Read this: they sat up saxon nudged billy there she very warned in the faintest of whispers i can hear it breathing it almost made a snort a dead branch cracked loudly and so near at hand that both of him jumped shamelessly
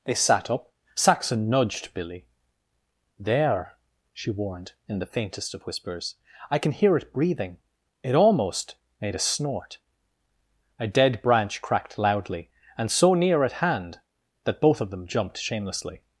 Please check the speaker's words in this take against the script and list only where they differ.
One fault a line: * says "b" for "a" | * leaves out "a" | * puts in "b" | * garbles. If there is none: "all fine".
* leaves out "very"
* says "them" for "him"